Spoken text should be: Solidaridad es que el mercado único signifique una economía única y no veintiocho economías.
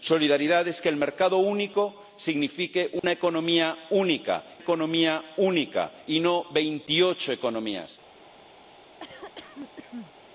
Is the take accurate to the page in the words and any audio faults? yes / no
no